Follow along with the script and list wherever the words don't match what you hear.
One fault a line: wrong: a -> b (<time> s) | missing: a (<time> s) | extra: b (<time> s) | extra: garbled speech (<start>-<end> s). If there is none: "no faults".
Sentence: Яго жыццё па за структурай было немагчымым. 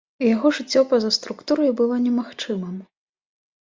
no faults